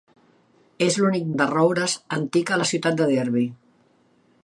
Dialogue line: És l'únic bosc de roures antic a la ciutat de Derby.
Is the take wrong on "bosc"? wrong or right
wrong